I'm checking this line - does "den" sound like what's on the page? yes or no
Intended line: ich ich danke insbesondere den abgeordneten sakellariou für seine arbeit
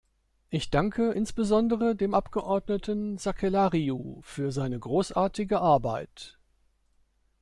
no